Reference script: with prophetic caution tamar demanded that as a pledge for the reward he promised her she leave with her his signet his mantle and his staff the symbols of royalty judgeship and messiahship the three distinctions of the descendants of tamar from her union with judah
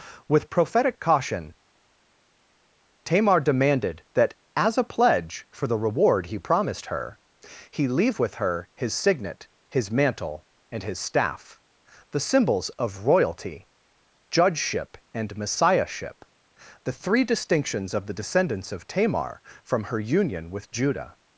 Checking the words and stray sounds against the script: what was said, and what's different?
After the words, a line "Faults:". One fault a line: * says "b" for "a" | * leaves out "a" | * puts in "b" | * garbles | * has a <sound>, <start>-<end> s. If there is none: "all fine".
with prophetic caution tamar demanded that as a pledge for the reward he promised her he leave with her his signet his mantle and his staff the symbols of royalty judgeship and messiahship the three distinctions of the descendants of tamar from her union with judah
Faults:
* says "he" for "she"